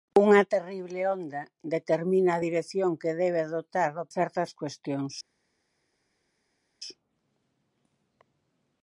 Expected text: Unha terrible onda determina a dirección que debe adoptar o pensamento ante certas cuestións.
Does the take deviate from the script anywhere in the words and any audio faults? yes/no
yes